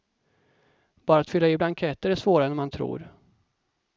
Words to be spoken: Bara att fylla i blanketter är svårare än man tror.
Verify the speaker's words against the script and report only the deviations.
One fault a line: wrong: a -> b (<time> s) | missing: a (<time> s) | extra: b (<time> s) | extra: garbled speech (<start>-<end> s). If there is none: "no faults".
no faults